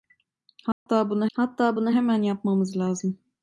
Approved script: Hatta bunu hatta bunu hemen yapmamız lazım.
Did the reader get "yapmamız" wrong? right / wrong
right